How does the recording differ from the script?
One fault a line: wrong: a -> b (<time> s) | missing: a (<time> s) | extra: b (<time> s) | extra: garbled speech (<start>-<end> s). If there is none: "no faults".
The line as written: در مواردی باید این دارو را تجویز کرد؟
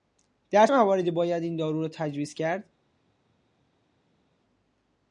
no faults